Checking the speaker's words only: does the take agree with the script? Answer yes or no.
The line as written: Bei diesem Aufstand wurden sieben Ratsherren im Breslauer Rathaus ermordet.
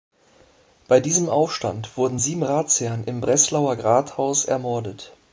yes